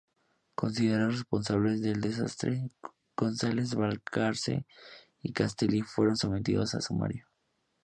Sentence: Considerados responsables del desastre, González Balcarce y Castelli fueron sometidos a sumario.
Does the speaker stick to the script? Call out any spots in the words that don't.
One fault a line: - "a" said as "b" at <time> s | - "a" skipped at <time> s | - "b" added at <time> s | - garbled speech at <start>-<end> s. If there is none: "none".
none